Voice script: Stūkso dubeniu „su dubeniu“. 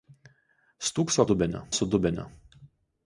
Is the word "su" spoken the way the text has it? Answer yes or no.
yes